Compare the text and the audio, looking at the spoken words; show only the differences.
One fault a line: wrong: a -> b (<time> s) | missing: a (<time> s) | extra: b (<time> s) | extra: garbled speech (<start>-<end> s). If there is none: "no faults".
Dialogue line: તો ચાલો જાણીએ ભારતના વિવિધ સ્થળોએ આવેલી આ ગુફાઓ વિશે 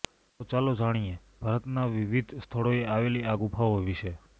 no faults